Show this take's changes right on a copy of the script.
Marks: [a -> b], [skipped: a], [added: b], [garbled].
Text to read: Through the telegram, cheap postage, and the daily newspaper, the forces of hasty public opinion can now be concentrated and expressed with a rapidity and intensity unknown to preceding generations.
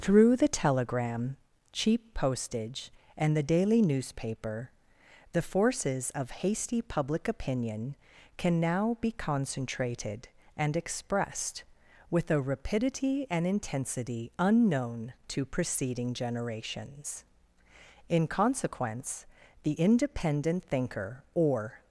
Through the telegram, cheap postage, and the daily newspaper, the forces of hasty public opinion can now be concentrated and expressed with a rapidity and intensity unknown to preceding generations. [added: In consequence the independent thinker or]